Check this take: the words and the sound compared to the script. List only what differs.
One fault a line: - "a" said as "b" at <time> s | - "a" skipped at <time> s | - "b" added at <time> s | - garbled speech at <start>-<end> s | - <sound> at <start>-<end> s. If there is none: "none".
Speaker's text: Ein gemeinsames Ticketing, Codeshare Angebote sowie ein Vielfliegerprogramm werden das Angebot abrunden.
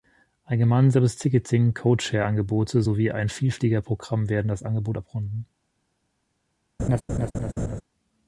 - laugh at 6.8-7.8 s